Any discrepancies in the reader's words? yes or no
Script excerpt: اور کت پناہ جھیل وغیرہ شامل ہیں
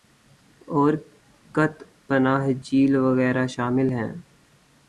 no